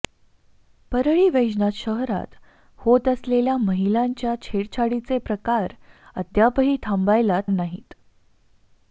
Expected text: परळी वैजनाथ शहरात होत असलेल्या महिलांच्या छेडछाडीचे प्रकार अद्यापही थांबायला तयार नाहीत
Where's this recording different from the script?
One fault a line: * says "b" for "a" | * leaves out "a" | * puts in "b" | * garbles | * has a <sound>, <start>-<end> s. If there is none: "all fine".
* leaves out "तयार"